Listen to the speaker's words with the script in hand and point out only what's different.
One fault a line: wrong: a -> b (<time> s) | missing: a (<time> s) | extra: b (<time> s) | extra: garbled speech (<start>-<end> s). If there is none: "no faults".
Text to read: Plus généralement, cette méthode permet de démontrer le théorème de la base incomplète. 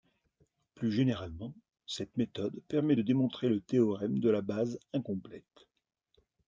no faults